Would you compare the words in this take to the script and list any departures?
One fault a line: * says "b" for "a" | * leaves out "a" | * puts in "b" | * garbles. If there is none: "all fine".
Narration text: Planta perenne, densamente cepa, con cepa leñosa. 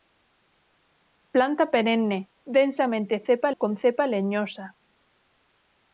all fine